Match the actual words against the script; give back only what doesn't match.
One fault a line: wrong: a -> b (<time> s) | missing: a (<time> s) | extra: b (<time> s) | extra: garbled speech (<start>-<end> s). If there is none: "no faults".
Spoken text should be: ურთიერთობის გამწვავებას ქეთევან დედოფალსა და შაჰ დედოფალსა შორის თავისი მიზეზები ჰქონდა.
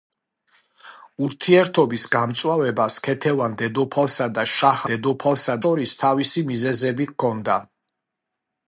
no faults